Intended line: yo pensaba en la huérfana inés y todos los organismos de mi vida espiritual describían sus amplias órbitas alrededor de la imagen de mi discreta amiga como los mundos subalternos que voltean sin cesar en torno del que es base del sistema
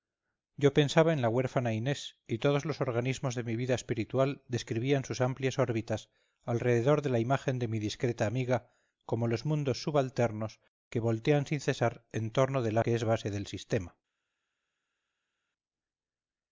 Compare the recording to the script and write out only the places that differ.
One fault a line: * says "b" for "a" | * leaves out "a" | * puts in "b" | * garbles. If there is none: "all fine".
all fine